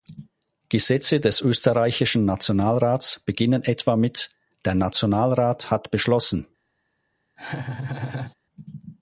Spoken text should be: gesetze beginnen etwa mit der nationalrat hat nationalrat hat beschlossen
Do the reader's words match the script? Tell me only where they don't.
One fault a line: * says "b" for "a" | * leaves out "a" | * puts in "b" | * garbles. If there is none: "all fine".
* puts in "des österreichischen nationalrats"
* leaves out "nationalrat hat"